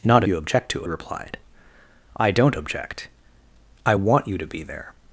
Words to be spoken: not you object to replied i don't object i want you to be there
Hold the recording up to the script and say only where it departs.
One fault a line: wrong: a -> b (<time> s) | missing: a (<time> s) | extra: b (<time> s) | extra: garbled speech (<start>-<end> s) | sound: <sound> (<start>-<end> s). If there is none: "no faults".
no faults